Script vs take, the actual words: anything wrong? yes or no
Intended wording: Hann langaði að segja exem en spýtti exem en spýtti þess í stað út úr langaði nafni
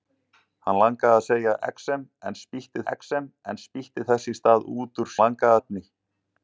no